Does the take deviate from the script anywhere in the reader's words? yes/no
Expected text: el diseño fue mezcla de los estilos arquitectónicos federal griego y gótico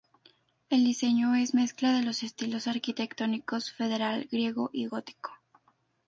yes